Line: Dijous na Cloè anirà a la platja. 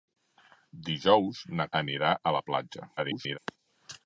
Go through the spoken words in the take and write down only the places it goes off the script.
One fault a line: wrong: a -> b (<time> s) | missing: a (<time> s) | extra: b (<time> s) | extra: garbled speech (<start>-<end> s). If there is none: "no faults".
missing: Cloè (1.7 s)
extra: garbled speech (3.0-3.4 s)